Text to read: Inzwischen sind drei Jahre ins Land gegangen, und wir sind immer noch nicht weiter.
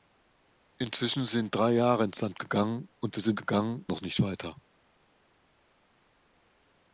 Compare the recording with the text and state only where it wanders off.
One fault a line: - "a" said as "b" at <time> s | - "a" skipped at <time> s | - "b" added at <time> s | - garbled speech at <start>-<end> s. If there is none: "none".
- "immer" said as "gegangen" at 3.4 s